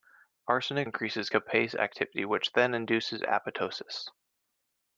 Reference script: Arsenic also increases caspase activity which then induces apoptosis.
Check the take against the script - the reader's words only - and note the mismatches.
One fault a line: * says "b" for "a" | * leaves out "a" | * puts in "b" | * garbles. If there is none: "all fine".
* leaves out "also"